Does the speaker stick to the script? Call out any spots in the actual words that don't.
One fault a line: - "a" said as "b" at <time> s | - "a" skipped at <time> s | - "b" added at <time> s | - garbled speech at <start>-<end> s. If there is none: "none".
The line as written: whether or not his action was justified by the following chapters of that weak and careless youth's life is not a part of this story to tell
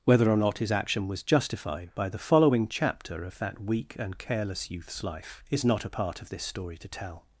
- "chapters" said as "chapter" at 2.7 s